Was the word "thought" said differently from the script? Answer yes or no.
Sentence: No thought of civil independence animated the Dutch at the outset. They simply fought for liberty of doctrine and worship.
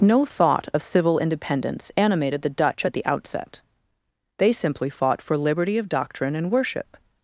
no